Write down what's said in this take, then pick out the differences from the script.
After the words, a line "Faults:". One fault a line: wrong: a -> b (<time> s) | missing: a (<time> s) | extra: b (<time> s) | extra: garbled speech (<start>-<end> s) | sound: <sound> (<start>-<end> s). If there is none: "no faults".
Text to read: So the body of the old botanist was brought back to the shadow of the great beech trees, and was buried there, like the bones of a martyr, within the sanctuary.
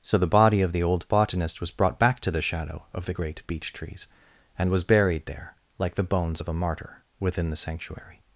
So the body of the old botanist was brought back to the shadow of the great beech trees, and was buried there, like the bones of a martyr, within the sanctuary.
Faults:
no faults